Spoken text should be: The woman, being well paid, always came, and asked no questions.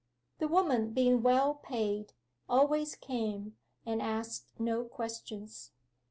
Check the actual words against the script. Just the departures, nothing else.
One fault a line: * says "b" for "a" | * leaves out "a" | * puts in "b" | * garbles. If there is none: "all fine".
all fine